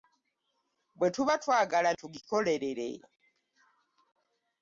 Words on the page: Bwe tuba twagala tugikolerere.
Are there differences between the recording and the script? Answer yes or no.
no